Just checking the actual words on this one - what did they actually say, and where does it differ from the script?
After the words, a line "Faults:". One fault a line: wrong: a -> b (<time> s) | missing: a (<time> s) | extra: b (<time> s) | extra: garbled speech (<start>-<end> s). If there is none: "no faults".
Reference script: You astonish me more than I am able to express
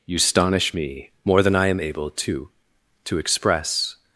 You astonish me more than I am able to to express
Faults:
extra: to (3.0 s)